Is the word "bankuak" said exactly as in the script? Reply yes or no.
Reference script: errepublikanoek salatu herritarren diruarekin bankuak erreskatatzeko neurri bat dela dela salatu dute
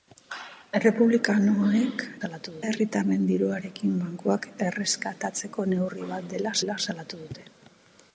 yes